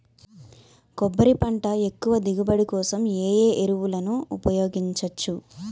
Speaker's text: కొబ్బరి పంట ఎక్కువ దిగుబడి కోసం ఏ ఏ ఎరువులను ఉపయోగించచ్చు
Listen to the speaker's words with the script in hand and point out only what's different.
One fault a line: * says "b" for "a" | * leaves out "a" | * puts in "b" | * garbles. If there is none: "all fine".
all fine